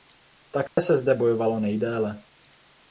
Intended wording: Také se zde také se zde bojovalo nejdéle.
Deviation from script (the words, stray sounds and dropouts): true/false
true